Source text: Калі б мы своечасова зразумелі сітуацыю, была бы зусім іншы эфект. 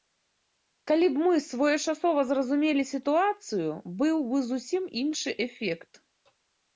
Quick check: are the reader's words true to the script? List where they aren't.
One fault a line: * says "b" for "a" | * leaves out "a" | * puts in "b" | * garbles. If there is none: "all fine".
* says "быў" for "была"